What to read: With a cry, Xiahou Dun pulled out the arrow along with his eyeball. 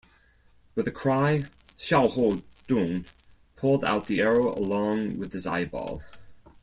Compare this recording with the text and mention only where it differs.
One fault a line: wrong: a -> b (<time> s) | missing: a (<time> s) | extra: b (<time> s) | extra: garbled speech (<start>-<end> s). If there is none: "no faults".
no faults